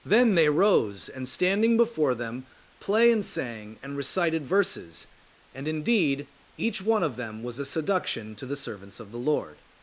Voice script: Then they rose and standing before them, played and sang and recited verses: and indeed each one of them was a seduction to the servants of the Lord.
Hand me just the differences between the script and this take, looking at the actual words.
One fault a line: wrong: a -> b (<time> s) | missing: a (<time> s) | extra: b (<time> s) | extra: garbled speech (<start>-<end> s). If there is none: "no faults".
wrong: played -> play (2.8 s)